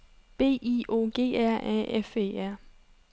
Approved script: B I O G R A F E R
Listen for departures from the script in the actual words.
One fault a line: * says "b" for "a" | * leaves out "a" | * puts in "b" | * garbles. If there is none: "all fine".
all fine